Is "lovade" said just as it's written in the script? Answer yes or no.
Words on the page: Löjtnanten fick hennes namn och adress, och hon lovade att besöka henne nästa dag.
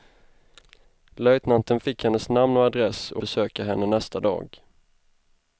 no